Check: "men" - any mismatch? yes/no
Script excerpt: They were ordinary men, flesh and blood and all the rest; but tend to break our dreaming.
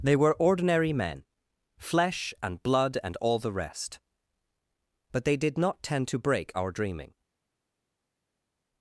no